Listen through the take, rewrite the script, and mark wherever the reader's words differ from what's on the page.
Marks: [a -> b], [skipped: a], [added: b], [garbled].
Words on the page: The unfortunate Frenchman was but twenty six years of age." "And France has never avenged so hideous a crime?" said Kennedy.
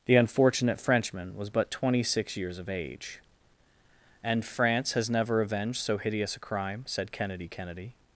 The unfortunate Frenchman was but twenty six years of age." "And France has never avenged so hideous a crime?" said Kennedy. [added: Kennedy]